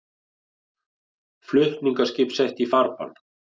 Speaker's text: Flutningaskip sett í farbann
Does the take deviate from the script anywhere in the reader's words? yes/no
no